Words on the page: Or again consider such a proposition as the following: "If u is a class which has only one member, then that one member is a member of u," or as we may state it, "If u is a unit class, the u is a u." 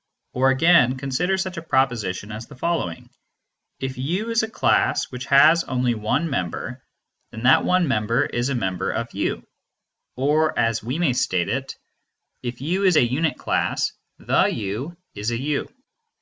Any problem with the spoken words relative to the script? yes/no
no